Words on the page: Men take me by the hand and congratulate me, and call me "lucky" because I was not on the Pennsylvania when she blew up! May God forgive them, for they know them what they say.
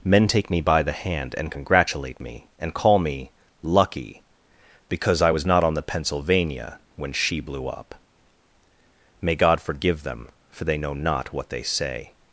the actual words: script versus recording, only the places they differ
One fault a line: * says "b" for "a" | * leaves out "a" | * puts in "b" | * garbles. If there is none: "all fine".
* says "not" for "them"